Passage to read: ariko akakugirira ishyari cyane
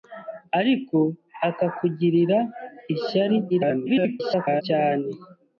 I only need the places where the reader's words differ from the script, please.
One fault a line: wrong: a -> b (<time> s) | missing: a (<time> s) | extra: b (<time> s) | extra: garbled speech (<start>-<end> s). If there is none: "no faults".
extra: garbled speech (3.5-4.6 s)